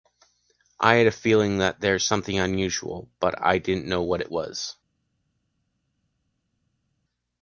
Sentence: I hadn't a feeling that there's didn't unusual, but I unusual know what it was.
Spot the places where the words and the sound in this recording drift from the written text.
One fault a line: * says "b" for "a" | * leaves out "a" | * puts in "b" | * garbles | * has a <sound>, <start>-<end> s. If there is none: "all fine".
* says "had" for "hadn't"
* says "something" for "didn't"
* says "didn't" for "unusual"